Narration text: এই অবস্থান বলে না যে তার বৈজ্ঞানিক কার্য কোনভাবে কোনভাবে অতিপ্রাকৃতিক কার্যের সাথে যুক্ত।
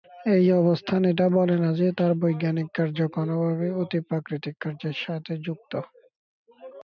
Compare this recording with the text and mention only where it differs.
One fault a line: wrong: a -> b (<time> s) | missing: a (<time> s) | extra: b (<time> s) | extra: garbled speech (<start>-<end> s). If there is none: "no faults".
extra: এটা (1.1 s)
missing: কোনভাবে (3.7 s)